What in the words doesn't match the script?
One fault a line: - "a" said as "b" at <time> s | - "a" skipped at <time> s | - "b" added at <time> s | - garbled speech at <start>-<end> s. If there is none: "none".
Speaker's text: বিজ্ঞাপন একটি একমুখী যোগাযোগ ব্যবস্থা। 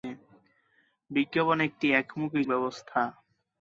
- "যোগাযোগ" skipped at 2.4 s